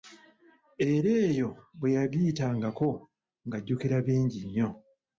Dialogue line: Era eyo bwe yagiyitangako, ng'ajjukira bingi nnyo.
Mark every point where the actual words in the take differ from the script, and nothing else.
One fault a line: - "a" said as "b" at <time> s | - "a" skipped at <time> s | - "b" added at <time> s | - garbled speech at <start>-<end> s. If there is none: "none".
none